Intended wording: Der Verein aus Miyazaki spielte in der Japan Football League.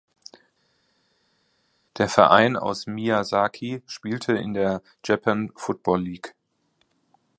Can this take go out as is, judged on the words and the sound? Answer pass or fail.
pass